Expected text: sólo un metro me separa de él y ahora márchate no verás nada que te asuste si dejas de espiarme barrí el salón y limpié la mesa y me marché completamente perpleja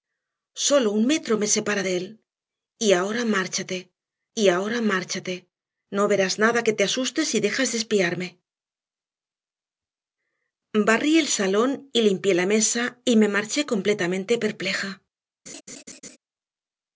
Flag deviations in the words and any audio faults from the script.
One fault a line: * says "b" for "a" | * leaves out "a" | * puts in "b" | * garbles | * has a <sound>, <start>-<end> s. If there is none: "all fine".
* puts in "y ahora márchate"
* has a laugh, 15.5-16.2 s